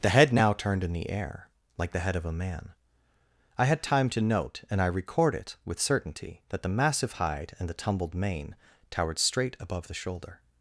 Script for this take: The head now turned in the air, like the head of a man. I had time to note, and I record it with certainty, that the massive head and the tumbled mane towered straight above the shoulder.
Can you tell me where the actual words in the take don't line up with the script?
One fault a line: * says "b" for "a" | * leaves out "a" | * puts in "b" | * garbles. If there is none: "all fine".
* says "hide" for "head"